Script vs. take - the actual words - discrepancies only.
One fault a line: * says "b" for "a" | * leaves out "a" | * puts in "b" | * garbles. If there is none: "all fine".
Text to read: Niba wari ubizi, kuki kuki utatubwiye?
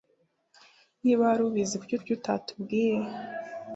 all fine